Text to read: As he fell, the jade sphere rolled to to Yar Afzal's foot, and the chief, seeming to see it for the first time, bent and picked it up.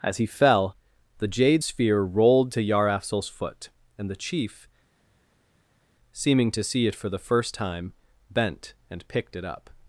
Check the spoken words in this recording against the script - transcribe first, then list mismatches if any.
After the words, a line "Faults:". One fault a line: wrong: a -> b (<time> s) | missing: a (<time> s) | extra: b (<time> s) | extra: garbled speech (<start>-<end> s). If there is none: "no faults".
As he fell, the jade sphere rolled to Yar Afzal's foot, and the chief, seeming to see it for the first time, bent and picked it up.
Faults:
missing: to (2.6 s)